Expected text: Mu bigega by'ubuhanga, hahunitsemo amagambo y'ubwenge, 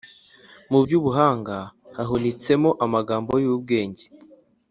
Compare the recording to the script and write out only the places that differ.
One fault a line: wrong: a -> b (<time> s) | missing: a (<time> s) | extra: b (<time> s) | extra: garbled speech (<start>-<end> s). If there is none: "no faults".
missing: bigega (0.8 s)